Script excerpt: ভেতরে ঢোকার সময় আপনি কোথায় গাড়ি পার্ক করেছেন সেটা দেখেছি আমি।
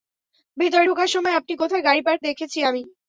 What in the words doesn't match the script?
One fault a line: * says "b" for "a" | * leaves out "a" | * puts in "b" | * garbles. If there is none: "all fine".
* leaves out "করেছেন সেটা"